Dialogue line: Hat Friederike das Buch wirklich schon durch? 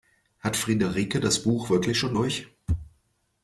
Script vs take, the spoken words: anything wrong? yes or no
no